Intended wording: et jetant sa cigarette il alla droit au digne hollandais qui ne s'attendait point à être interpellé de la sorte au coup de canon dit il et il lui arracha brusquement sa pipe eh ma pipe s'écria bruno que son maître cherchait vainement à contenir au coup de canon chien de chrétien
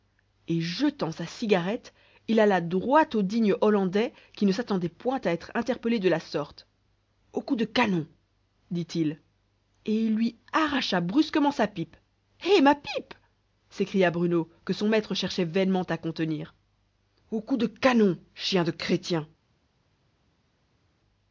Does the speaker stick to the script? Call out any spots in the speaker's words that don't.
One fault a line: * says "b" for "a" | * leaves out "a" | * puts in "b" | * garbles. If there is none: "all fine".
all fine